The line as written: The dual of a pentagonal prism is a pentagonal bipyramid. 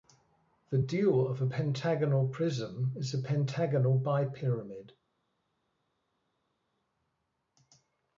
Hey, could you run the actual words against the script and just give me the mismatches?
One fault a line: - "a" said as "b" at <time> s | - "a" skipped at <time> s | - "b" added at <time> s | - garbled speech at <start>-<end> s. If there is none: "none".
none